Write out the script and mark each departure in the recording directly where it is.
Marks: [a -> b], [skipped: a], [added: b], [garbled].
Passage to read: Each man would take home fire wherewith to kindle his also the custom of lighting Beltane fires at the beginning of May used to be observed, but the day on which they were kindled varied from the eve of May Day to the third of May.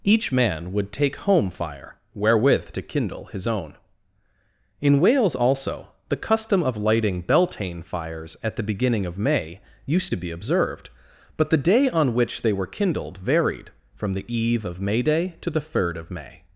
Each man would take home fire wherewith to kindle his [added: own In Wales] also the custom of lighting Beltane fires at the beginning of May used to be observed, but the day on which they were kindled varied from the eve of May Day to the third of May.